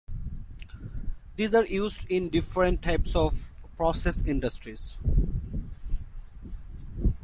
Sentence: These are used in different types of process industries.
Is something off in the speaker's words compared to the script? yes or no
no